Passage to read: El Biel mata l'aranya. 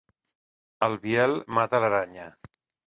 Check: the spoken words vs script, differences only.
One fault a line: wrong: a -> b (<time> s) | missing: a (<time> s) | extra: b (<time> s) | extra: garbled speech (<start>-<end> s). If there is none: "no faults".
no faults